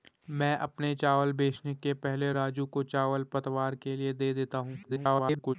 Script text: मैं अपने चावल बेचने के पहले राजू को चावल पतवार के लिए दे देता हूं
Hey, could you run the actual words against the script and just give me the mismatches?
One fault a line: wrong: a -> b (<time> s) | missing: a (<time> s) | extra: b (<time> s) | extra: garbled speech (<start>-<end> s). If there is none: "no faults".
extra: garbled speech (4.8-5.6 s)